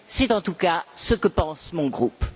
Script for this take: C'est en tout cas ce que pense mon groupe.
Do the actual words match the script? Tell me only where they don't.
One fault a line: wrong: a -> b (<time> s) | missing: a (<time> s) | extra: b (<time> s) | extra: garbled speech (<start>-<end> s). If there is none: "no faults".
no faults